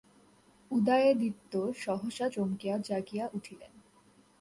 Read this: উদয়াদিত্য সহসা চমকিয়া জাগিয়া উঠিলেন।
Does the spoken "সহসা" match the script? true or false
true